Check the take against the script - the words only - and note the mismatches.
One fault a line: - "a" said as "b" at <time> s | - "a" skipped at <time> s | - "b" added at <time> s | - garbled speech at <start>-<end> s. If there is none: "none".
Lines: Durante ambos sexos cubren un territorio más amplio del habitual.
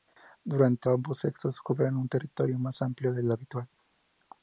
none